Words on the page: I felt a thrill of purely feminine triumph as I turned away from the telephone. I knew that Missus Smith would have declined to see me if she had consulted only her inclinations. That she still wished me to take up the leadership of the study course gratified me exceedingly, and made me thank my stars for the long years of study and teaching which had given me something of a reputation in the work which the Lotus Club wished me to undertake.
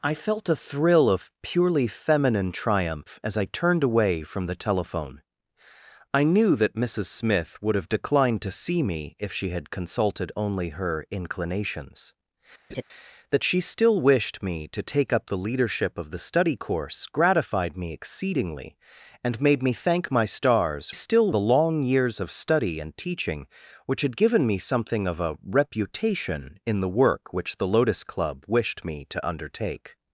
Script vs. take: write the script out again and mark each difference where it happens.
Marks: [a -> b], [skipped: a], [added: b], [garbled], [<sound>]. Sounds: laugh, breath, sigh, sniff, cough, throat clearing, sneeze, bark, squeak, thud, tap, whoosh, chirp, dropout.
I felt a thrill of purely feminine triumph as I turned away from the telephone. I knew that Missus Smith would have declined to see me if she had consulted only her inclinations. [laugh] That she still wished me to take up the leadership of the study course gratified me exceedingly, and made me thank my stars [for -> still] the long years of study and teaching which had given me something of a reputation in the work which the Lotus Club wished me to undertake.